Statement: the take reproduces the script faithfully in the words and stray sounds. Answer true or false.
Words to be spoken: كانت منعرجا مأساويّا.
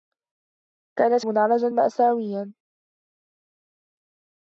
true